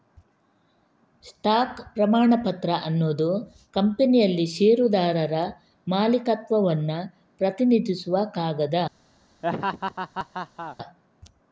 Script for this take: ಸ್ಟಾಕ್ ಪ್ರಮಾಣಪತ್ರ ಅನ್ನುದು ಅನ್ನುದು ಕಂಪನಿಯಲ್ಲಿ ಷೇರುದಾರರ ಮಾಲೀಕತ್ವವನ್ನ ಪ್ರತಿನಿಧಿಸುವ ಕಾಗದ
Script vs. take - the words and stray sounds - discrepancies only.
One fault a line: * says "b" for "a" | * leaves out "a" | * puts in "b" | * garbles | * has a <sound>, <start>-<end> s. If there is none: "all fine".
* leaves out "ಅನ್ನುದು"
* has a laugh, 9.4-10.8 s